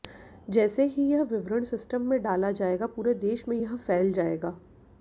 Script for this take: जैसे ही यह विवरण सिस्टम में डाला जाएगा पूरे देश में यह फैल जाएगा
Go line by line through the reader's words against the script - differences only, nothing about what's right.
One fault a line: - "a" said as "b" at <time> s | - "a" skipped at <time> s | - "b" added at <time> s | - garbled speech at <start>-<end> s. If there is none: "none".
none